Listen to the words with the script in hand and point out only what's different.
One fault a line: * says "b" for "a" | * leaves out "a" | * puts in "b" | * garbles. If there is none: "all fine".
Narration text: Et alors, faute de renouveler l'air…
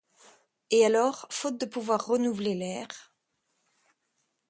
* puts in "pouvoir"